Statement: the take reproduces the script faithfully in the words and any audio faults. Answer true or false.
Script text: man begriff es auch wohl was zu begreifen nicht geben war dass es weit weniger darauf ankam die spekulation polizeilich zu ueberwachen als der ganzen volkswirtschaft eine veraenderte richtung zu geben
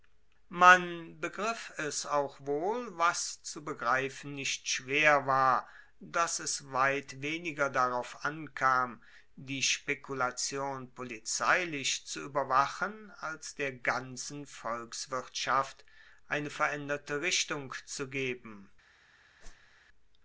false